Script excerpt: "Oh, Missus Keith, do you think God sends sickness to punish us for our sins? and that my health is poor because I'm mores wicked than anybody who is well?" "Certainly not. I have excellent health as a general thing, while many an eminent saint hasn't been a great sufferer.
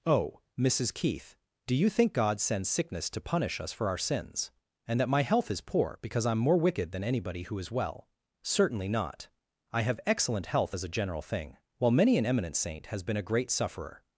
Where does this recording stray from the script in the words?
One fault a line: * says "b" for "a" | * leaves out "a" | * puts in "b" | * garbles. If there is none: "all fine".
* says "more" for "mores"
* says "has" for "hasn't"